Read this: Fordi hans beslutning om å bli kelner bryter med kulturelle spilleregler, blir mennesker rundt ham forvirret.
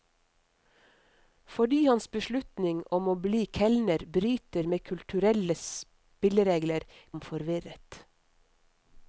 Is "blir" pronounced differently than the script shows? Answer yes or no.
yes